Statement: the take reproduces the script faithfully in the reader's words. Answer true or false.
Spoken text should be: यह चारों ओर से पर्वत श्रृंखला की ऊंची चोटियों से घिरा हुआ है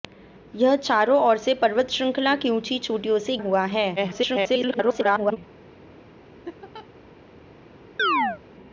false